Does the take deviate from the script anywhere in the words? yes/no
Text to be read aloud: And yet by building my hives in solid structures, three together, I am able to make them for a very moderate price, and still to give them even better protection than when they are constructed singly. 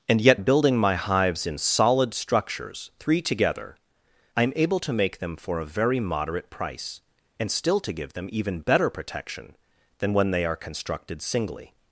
yes